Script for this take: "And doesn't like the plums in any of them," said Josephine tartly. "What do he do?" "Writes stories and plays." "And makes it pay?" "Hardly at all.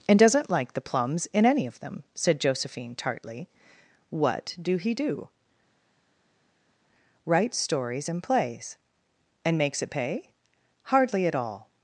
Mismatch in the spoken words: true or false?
false